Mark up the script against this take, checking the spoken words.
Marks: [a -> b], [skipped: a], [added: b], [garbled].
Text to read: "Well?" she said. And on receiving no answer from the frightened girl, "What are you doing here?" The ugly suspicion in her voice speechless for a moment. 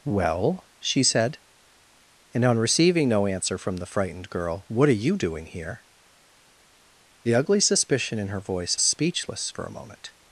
"Well?" she said. And on receiving no answer from the frightened girl, "What are you doing here?" The ugly suspicion in her voice speechless for a moment.